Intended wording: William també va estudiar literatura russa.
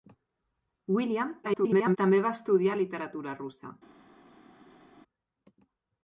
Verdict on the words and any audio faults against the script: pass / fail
fail